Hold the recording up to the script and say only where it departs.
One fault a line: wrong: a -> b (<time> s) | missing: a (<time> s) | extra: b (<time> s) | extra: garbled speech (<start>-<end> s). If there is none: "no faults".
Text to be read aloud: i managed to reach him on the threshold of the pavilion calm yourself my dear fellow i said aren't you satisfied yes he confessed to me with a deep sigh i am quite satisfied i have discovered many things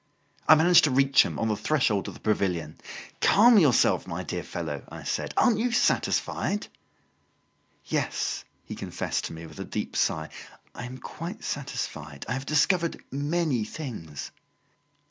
no faults